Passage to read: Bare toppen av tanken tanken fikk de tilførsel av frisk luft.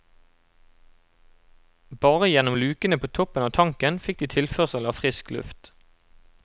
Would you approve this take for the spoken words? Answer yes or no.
no